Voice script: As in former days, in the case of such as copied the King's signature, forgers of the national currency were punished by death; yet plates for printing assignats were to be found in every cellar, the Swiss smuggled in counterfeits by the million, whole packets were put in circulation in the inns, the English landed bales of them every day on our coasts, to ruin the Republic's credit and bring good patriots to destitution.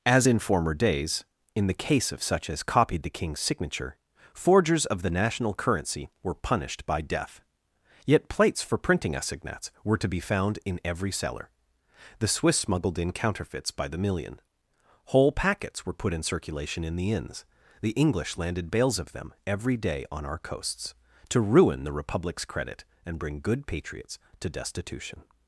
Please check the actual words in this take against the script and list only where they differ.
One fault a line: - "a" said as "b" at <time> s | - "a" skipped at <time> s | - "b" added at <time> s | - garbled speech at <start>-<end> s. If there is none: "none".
none